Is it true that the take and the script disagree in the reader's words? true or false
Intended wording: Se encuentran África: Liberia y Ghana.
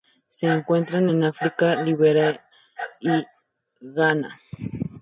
true